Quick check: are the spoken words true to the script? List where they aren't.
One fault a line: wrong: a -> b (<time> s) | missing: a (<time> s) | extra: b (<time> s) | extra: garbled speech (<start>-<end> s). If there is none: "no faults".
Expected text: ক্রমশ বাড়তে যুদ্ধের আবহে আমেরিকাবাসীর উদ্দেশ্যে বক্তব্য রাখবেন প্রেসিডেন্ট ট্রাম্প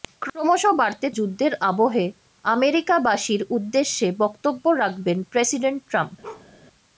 no faults